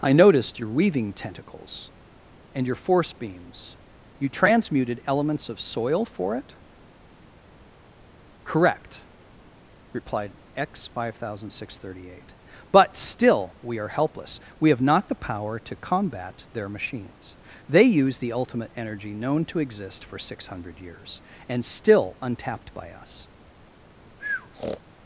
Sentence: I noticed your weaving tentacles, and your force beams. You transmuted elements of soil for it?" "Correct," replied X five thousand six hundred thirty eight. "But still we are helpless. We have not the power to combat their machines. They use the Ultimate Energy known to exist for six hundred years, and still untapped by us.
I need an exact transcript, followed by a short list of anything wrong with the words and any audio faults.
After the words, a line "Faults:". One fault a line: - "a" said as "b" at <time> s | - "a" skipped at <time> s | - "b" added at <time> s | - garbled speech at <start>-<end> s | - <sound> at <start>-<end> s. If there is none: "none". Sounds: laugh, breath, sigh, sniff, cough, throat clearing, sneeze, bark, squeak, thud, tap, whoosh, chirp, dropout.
I noticed your weaving tentacles, and your force beams. You transmuted elements of soil for it?" "Correct," replied X five thousand six hundred thirty eight. "But still we are helpless. We have not the power to combat their machines. They use the Ultimate Energy known to exist for six hundred years, and still untapped by us.
Faults:
- breath at 24.2-24.8 s